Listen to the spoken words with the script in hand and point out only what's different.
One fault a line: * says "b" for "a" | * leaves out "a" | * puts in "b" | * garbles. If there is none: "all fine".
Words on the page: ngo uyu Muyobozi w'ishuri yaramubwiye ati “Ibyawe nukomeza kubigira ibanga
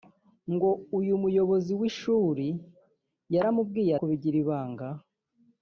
* leaves out "ati Ibyawe nukomeza"